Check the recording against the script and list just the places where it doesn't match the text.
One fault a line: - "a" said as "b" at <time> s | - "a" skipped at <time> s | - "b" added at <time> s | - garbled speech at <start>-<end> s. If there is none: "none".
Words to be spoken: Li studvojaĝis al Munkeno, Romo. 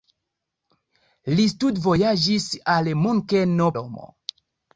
none